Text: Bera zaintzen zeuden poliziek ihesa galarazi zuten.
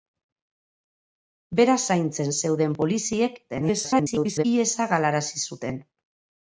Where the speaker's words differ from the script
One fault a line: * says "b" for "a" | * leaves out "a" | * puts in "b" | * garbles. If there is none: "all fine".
* garbles